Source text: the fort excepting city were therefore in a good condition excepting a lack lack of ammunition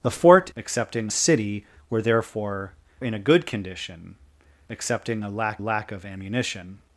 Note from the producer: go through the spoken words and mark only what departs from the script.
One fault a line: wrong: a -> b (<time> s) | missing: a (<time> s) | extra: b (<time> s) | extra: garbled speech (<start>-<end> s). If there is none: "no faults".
no faults